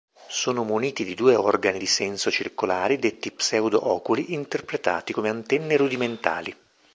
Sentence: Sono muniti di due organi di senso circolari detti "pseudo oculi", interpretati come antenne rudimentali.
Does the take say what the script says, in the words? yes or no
yes